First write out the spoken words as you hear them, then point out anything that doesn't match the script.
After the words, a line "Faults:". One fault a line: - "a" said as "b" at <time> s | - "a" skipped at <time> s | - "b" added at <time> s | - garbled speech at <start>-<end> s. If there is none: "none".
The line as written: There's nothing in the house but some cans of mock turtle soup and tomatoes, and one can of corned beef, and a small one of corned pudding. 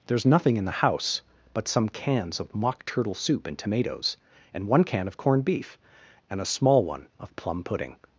There's nothing in the house but some cans of mock turtle soup and tomatoes, and one can of corned beef, and a small one of plum pudding.
Faults:
- "corned" said as "plum" at 7.4 s